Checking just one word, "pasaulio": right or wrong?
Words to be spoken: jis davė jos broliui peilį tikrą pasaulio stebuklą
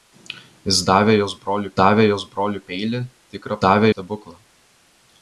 wrong